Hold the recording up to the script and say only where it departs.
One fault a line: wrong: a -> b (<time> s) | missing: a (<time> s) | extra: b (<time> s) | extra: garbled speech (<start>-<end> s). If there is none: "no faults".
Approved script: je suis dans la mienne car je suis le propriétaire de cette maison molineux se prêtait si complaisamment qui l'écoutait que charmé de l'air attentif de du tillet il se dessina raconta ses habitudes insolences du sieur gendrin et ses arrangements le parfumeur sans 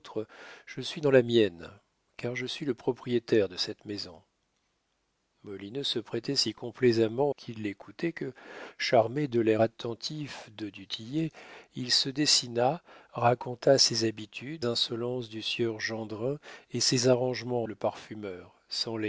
no faults